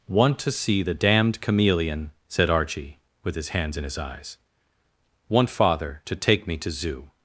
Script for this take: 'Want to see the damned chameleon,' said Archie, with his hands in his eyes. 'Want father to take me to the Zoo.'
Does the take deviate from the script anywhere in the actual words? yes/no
yes